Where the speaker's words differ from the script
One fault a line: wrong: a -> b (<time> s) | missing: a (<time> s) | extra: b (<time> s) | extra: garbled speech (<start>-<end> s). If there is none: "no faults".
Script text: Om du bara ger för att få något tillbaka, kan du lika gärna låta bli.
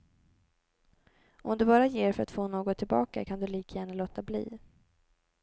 no faults